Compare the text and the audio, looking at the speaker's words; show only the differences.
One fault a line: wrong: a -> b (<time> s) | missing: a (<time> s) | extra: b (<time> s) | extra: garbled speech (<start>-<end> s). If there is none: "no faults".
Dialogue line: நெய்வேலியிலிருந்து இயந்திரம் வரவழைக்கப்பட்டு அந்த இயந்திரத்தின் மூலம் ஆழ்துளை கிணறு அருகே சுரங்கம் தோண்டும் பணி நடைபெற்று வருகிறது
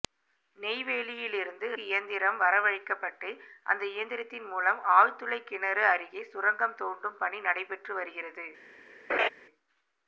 no faults